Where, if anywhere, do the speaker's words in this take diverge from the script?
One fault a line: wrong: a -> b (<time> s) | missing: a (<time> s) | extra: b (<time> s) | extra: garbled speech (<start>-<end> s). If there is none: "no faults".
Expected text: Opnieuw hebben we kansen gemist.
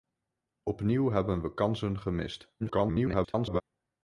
extra: garbled speech (2.6-3.6 s)